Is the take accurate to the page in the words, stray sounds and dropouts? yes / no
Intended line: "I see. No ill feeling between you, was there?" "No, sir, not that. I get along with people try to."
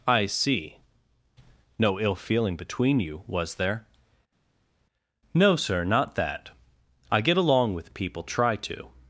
yes